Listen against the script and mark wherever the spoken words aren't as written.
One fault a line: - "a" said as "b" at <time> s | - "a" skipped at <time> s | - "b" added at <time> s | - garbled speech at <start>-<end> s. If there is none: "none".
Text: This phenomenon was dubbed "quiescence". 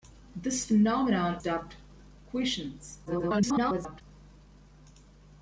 - "was" skipped at 1.4 s
- garbled speech at 3.1-4.0 s